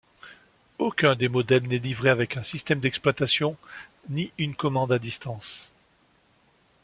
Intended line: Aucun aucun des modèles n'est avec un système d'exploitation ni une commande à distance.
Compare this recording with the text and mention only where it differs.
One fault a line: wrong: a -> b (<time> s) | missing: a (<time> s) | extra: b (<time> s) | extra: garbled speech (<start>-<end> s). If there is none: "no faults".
missing: aucun (1.1 s)
extra: livré (1.8 s)